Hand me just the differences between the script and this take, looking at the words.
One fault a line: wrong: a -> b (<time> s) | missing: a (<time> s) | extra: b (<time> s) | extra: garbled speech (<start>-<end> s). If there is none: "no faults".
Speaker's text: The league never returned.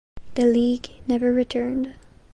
no faults